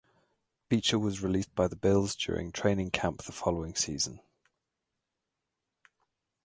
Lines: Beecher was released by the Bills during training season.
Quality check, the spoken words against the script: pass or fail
fail